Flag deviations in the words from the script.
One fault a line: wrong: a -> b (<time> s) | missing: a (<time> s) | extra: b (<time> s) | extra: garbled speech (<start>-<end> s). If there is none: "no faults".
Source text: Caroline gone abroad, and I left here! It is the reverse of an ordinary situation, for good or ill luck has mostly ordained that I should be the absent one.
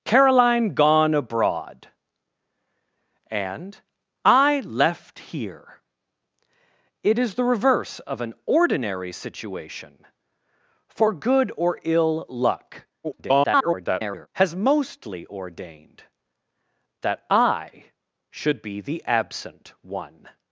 extra: garbled speech (13.0-14.3 s)